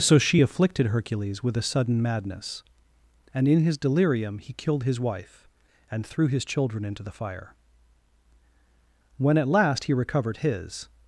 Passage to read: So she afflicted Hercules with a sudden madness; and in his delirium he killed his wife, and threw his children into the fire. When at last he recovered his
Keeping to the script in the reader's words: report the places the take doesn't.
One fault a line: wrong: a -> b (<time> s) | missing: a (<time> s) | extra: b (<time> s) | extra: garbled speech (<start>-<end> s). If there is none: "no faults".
no faults